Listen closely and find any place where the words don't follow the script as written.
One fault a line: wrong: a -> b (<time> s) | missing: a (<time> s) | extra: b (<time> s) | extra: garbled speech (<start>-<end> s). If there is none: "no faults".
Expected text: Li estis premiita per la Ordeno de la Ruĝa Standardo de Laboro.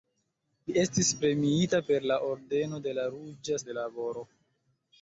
missing: Standardo (3.6 s)